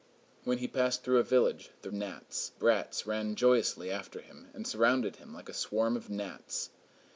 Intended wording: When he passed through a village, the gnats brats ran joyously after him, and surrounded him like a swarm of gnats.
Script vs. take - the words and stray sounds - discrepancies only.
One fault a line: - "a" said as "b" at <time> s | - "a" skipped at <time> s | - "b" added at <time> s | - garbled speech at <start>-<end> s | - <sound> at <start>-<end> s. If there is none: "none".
none